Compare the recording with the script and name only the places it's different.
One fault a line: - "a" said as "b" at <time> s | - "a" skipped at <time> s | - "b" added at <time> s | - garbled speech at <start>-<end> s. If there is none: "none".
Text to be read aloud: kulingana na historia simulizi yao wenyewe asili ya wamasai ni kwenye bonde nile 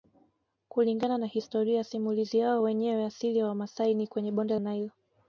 none